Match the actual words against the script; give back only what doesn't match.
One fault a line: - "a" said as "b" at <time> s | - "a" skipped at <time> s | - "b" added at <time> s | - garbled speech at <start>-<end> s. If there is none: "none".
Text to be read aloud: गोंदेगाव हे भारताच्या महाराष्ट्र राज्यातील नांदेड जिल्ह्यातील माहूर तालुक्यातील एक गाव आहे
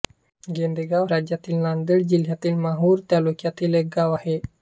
- "हे भारताच्या महाराष्ट्र" skipped at 1.1 s